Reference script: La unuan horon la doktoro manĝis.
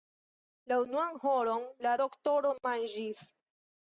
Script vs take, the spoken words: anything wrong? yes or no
no